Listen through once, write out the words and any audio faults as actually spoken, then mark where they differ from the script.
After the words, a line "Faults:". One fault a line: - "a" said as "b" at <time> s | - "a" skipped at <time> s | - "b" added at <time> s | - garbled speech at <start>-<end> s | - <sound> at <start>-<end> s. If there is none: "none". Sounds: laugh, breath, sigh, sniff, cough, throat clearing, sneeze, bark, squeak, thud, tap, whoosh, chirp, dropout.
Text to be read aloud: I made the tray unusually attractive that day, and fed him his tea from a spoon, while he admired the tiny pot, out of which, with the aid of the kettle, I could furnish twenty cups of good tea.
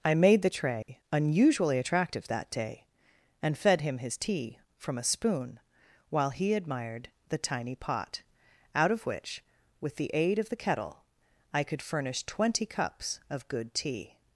I made the tray unusually attractive that day, and fed him his tea from a spoon, while he admired the tiny pot, out of which, with the aid of the kettle, I could furnish twenty cups of good tea.
Faults:
- dropout at 0.8-0.9 s